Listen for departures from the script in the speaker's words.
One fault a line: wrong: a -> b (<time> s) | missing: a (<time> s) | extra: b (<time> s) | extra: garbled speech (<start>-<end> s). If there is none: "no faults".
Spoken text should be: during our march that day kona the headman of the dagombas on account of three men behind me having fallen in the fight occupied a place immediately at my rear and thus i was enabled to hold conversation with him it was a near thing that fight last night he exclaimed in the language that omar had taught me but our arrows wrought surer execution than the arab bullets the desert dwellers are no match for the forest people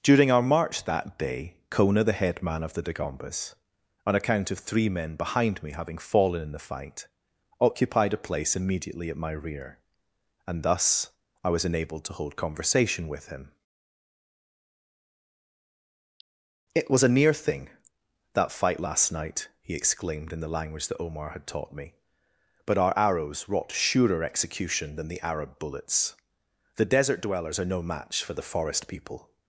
no faults